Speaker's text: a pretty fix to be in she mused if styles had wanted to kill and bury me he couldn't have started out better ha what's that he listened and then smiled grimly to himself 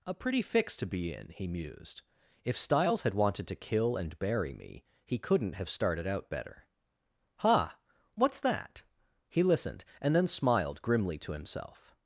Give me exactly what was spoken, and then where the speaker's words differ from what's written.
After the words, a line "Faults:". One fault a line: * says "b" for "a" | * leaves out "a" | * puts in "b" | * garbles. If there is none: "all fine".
a pretty fix to be in he mused if styles had wanted to kill and bury me he couldn't have started out better ha what's that he listened and then smiled grimly to himself
Faults:
* says "he" for "she"